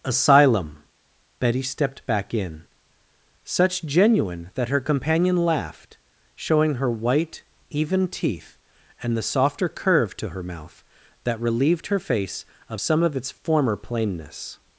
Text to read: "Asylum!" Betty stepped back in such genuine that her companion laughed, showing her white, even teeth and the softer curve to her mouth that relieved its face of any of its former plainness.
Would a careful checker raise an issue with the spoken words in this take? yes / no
yes